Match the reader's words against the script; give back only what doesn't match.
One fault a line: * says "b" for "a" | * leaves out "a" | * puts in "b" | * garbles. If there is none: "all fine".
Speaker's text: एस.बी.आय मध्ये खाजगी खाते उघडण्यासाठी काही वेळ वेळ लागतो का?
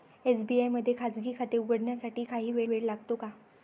all fine